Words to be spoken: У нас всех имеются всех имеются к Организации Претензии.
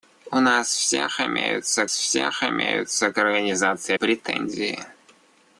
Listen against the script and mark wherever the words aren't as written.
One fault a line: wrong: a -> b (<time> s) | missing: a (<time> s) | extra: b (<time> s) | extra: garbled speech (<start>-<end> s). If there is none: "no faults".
no faults